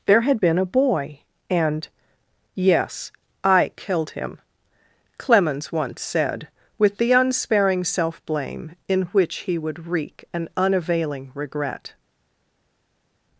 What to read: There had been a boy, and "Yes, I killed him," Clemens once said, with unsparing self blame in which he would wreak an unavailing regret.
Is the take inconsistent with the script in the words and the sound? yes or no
yes